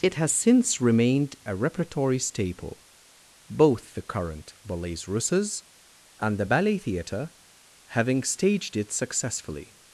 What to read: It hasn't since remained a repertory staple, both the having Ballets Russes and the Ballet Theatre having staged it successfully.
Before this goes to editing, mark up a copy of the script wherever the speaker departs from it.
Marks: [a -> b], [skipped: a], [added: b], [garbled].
It [hasn't -> has] since remained a repertory staple, both the [having -> current] Ballets Russes and the Ballet Theatre having staged it successfully.